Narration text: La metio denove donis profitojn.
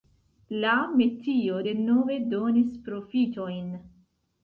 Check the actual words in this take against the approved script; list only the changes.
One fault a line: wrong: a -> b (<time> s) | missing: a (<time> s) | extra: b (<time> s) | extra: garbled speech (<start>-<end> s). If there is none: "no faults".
no faults